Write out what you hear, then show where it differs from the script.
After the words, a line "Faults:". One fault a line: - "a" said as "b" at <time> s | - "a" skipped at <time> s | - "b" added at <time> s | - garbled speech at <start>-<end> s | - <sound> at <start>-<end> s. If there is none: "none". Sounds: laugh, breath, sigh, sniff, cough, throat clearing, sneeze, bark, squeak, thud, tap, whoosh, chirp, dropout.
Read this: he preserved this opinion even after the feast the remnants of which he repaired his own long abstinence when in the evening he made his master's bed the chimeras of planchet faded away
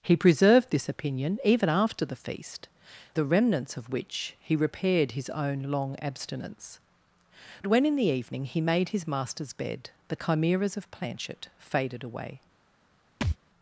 he preserved this opinion even after the feast the remnants of which he repaired his own long abstinence when in the evening he made his master's bed the chimeras of planchet faded away
Faults:
- thud at 13.2-13.4 s